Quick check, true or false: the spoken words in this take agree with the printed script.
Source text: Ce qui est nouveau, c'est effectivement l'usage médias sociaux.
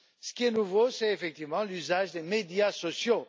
false